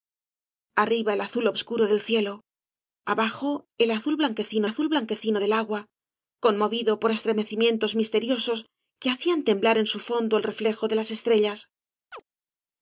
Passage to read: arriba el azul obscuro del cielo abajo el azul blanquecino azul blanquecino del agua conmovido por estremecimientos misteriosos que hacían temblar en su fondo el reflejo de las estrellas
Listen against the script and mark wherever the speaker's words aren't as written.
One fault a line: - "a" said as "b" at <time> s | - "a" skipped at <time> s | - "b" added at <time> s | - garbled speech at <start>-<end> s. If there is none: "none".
none